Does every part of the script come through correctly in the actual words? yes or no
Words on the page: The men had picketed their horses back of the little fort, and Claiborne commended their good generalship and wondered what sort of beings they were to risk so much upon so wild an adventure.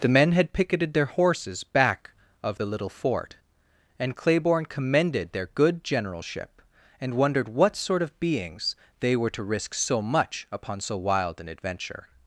yes